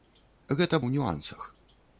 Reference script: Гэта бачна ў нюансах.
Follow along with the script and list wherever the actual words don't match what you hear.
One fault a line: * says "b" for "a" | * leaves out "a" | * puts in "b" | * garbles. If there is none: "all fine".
* leaves out "бачна"